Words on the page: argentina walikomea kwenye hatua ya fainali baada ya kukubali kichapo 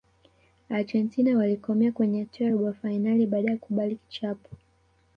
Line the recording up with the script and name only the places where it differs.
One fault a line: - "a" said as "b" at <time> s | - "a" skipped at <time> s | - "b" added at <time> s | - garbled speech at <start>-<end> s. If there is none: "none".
- "robo" added at 2.5 s